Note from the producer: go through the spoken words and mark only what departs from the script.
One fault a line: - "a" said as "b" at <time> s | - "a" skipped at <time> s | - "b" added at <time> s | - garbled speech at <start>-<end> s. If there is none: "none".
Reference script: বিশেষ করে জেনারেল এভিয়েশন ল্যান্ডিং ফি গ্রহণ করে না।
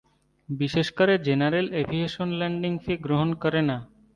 none